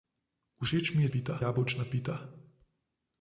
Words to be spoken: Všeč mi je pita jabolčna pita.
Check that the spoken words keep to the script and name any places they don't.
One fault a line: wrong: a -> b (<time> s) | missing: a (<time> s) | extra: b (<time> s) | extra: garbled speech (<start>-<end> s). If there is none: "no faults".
no faults